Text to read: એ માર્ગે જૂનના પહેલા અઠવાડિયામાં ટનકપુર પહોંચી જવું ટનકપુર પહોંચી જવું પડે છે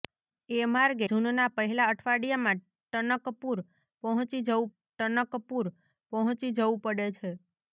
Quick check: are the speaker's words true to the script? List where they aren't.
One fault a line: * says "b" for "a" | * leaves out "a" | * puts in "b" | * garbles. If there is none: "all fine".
all fine